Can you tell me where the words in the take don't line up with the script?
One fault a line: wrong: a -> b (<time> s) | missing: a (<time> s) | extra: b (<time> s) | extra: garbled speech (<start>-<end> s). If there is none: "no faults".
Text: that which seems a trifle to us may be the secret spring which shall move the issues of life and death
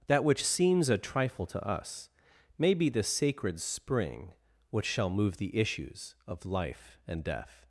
wrong: secret -> sacred (3.0 s)